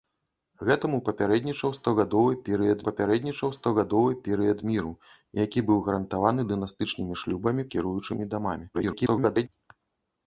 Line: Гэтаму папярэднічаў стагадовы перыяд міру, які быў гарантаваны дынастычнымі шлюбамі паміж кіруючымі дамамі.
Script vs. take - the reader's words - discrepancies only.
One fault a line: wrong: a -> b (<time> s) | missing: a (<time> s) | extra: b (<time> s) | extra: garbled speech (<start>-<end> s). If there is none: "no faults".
extra: папярэднічаў стагадовы перыяд (2.9 s)
missing: паміж (7.7 s)
extra: garbled speech (8.7-9.5 s)